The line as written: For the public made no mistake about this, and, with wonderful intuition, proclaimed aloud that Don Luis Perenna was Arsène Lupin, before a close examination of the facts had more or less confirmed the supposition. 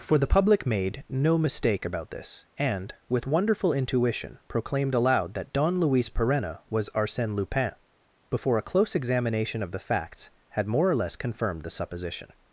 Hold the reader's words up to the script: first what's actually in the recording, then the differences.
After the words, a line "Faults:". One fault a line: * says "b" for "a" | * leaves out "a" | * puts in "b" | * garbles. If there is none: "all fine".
For the public made no mistake about this, and, with wonderful intuition, proclaimed aloud that Don Luis Perenna was Arsène Lupin, before a close examination of the facts had more or less confirmed the supposition.
Faults:
all fine